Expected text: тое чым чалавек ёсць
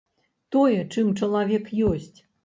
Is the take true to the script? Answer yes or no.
yes